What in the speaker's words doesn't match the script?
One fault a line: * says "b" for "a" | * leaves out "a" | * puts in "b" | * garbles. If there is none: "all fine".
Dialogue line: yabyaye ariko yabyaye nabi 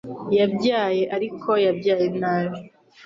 all fine